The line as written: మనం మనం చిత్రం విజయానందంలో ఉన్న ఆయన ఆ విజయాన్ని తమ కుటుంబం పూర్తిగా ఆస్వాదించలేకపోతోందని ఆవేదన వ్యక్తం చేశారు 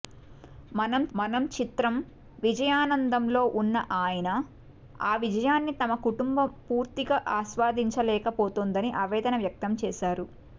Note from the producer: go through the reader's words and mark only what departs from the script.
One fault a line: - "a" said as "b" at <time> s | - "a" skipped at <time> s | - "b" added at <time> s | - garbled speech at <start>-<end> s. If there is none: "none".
none